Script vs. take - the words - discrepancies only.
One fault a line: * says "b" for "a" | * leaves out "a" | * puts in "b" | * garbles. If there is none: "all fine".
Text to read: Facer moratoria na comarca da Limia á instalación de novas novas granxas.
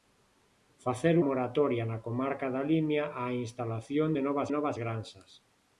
all fine